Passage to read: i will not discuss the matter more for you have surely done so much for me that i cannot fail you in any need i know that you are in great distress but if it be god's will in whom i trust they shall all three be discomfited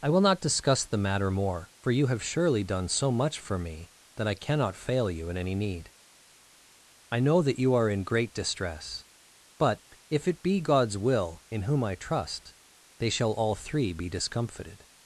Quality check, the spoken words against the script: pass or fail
pass